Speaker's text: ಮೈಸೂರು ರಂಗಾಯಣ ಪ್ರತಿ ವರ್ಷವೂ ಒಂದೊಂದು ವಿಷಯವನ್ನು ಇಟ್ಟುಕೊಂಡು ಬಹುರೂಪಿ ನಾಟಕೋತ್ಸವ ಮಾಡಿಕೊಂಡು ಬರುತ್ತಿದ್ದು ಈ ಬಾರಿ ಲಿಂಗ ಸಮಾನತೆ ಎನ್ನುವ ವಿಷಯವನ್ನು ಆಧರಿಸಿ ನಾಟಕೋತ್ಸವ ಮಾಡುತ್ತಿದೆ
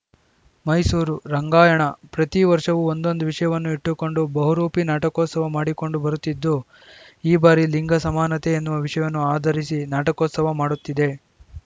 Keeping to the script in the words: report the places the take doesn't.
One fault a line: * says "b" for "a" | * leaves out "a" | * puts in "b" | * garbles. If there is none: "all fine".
all fine